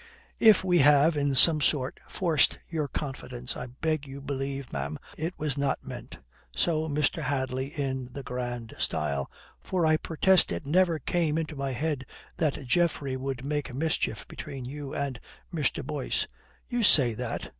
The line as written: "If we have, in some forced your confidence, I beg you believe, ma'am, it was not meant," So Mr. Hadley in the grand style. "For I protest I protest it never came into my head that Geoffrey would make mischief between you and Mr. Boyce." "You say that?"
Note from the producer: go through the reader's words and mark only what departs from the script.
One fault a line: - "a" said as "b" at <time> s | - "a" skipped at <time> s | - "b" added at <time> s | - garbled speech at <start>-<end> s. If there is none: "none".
- "sort" added at 1.6 s
- "I protest" skipped at 10.5 s